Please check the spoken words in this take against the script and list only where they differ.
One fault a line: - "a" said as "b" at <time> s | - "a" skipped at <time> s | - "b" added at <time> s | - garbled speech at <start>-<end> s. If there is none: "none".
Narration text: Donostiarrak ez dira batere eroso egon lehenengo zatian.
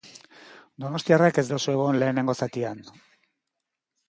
- "dira batere" skipped at 1.4 s